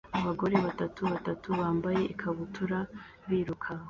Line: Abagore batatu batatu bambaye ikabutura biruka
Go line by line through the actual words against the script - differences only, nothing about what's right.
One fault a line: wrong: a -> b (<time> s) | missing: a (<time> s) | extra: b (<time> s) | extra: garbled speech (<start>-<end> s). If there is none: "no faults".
no faults